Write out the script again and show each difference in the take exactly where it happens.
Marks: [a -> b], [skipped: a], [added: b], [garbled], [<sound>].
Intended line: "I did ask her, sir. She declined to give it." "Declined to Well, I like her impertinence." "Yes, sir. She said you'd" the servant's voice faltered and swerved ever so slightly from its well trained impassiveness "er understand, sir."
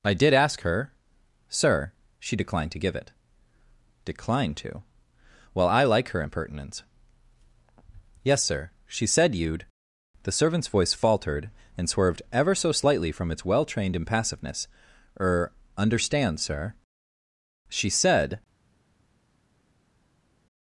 "I did ask her, sir. She declined to give it." "Declined to Well, I like her impertinence." "Yes, sir. She said you'd" the servant's voice faltered and swerved ever so slightly from its well trained impassiveness "er understand, sir." [added: She said]